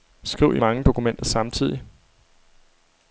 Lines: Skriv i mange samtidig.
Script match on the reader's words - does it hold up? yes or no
no